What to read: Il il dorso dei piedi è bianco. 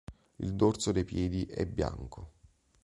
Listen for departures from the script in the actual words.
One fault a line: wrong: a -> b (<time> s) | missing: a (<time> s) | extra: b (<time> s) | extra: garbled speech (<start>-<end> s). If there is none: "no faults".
missing: il (0.6 s)